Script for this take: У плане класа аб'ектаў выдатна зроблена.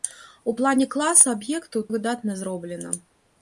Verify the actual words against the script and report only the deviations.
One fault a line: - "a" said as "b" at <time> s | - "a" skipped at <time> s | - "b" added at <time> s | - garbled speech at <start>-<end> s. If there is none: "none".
none